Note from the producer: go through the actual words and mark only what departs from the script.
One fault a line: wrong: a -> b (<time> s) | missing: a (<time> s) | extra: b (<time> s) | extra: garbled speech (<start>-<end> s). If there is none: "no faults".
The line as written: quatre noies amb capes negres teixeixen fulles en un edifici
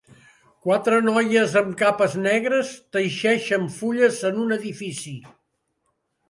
no faults